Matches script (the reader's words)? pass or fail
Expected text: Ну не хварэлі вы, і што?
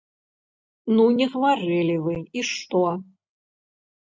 pass